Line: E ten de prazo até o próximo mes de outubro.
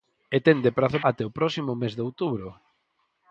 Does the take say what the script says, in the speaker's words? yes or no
yes